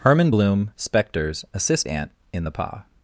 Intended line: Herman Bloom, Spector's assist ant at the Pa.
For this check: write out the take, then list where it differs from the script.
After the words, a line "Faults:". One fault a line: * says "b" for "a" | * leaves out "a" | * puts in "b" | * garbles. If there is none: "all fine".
Herman Bloom, Spector's assist ant in the Pa.
Faults:
* says "in" for "at"